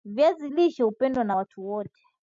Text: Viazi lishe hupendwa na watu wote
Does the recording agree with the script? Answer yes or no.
yes